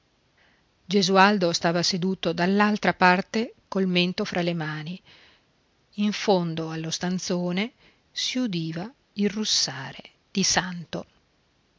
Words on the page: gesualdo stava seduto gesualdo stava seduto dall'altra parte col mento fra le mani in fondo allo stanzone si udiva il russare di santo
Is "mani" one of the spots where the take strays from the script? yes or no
no